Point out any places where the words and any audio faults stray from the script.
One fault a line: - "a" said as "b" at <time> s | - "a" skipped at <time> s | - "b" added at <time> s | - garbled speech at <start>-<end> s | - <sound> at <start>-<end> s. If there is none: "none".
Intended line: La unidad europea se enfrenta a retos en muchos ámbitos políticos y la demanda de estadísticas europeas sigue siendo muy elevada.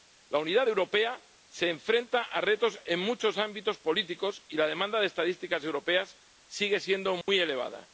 - dropout at 7.2-7.3 s